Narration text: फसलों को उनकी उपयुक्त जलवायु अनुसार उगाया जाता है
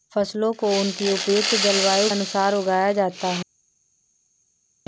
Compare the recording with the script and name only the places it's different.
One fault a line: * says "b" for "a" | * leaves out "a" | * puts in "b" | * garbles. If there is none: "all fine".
all fine